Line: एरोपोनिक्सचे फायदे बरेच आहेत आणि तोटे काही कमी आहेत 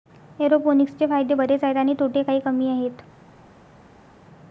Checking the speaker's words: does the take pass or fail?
pass